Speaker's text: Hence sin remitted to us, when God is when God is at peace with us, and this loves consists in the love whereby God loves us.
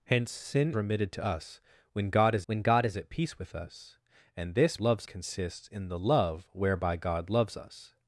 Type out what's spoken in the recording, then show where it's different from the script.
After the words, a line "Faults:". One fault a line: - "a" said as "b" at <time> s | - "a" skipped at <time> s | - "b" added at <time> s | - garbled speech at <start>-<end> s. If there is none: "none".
Hence sin remitted to us, when God is when God is at peace with us, and this loves consists in the love whereby God loves us.
Faults:
none